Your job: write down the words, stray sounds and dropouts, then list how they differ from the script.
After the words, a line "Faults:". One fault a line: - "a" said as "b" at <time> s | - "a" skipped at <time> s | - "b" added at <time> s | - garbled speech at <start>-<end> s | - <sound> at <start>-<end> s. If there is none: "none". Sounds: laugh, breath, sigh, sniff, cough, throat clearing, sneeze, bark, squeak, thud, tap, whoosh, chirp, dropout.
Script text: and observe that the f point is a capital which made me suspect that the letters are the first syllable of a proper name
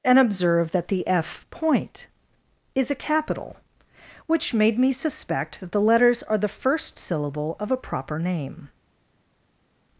and observe that the f point is a capital which made me suspect that the letters are the first syllable of a proper name
Faults:
none